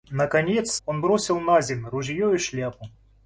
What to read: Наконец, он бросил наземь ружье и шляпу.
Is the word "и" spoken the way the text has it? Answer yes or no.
yes